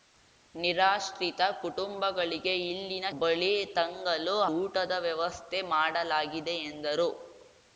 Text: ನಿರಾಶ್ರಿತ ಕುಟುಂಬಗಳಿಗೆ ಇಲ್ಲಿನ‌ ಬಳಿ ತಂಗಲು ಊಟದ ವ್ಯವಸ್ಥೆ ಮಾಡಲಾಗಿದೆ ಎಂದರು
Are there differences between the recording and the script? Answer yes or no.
no